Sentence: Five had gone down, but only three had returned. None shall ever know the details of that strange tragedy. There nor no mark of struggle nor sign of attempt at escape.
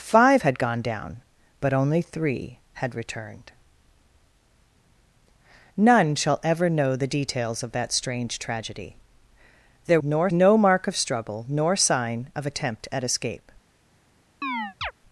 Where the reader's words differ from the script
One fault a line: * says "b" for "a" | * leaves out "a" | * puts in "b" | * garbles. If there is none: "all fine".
all fine